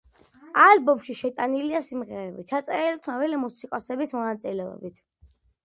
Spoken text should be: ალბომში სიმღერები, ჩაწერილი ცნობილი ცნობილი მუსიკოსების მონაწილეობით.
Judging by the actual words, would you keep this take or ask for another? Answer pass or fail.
fail